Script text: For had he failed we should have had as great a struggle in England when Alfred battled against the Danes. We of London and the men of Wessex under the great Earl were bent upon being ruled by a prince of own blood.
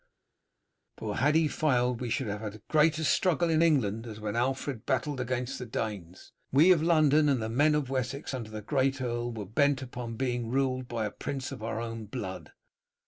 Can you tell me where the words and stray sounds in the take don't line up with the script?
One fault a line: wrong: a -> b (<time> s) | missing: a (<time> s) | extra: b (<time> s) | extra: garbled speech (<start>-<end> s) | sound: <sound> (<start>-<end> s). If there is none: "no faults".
extra: as (4.1 s)
extra: our (11.6 s)